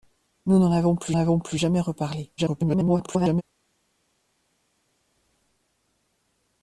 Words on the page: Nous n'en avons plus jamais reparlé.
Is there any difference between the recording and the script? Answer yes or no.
yes